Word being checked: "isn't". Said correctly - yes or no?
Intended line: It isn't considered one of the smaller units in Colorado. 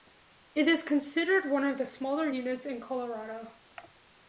no